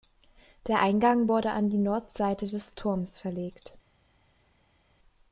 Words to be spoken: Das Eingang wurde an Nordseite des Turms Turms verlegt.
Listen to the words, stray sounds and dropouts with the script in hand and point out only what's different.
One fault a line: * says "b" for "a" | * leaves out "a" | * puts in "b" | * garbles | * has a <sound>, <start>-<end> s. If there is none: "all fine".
* says "Der" for "Das"
* puts in "die"
* leaves out "Turms"